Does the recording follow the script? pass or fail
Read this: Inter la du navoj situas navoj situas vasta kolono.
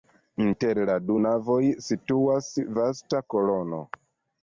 fail